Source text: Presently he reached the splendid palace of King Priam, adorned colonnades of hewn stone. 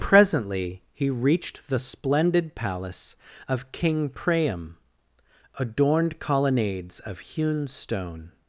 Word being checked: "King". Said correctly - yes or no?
yes